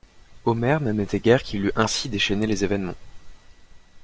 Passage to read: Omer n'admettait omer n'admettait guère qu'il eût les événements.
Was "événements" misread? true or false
false